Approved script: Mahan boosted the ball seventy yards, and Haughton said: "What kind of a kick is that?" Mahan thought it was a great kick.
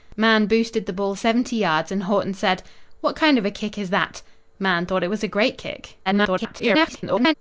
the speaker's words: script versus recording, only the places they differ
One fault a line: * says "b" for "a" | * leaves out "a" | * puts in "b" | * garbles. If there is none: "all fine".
* garbles